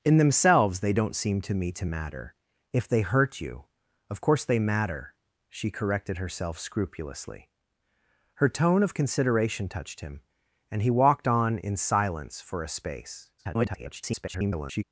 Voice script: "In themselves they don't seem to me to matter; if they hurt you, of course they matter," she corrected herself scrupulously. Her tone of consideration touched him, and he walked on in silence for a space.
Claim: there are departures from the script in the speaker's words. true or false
true